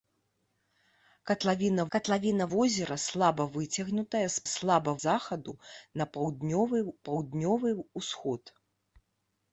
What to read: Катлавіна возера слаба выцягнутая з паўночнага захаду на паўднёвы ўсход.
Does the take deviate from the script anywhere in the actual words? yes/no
yes